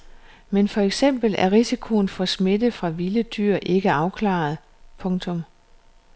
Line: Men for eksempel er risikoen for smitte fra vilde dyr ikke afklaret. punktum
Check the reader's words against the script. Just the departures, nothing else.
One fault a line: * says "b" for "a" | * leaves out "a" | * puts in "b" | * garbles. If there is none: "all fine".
all fine